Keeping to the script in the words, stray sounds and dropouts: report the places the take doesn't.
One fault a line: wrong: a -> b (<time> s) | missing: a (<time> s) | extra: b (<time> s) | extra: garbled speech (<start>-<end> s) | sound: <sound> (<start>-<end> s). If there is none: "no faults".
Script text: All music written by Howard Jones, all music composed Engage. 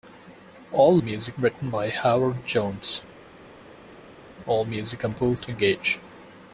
no faults